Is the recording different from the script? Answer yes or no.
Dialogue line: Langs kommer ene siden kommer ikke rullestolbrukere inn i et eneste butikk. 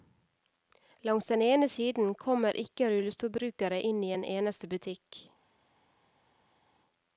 yes